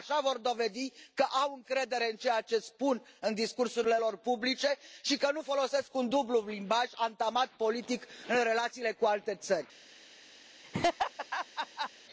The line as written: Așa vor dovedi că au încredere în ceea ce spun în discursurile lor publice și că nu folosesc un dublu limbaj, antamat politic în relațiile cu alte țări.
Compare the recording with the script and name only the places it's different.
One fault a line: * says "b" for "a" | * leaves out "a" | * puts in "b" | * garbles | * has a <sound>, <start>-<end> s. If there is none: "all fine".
* has a laugh, 10.6-11.9 s